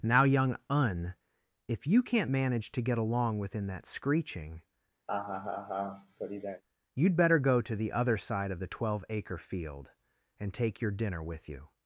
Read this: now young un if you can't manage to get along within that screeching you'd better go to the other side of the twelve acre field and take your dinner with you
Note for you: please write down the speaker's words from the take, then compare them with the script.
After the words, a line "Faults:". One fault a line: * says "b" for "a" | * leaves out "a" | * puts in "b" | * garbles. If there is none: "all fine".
now young un if you can't manage to get along within that screeching you'd better go to the other side of the twelve acre field and take your dinner with you
Faults:
all fine